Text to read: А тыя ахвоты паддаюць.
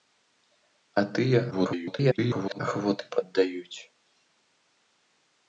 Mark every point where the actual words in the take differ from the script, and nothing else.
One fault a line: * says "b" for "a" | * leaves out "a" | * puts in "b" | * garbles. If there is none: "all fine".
* garbles